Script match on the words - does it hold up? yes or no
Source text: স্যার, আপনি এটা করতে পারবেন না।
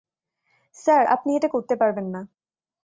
yes